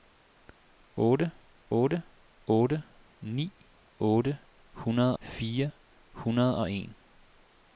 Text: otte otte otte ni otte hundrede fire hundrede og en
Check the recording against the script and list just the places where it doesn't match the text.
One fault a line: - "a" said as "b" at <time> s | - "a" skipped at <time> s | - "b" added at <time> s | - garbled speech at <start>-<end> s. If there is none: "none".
none